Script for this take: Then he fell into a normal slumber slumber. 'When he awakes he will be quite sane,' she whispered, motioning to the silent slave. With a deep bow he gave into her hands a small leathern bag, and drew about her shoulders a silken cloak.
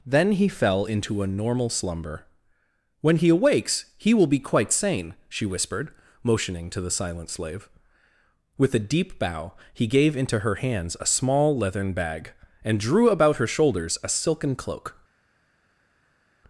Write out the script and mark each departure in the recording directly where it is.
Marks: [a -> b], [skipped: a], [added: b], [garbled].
Then he fell into a normal slumber [skipped: slumber.] 'When he awakes he will be quite sane,' she whispered, motioning to the silent slave. With a deep bow he gave into her hands a small leathern bag, and drew about her shoulders a silken cloak.